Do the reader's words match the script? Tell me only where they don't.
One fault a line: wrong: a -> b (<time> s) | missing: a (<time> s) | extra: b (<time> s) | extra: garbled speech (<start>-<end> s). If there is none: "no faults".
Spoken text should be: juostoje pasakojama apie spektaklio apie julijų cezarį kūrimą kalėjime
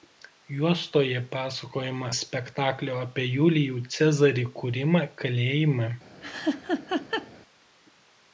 missing: apie (2.1 s)